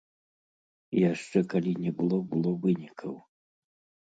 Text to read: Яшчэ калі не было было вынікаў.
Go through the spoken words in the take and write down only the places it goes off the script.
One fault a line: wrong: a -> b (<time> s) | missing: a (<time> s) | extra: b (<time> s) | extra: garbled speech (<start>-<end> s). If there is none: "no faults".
no faults